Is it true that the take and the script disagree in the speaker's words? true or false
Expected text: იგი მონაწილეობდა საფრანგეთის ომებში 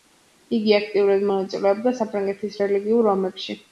true